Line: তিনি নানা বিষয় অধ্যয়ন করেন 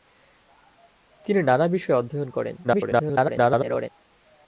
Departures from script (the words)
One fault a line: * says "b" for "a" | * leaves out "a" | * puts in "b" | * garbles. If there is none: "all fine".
* garbles